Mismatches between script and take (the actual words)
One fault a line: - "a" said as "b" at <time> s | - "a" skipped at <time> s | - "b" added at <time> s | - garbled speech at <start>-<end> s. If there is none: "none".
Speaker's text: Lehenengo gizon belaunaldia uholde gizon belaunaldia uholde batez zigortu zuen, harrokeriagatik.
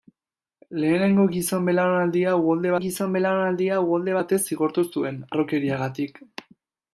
none